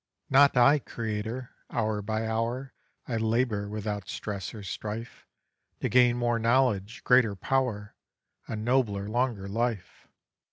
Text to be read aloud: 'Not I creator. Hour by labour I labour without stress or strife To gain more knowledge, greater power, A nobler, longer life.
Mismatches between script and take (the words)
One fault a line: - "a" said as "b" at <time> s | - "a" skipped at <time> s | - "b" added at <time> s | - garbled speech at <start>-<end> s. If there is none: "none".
- "labour" said as "hour" at 2.3 s